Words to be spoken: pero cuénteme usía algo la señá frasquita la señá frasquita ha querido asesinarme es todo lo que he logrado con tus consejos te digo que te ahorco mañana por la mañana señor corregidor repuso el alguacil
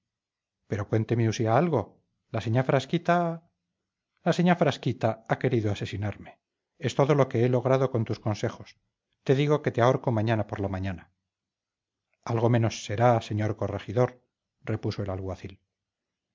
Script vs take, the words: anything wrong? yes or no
yes